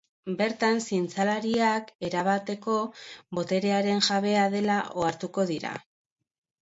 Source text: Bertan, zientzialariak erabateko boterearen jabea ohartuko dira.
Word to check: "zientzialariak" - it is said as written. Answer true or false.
true